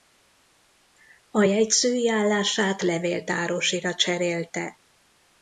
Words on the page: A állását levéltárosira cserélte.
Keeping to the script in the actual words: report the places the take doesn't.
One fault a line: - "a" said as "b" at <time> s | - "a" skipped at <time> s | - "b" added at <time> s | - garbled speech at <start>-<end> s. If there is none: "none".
- "jegyzői" added at 1.4 s